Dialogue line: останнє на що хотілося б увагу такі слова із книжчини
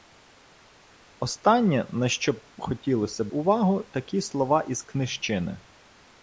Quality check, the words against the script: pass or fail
pass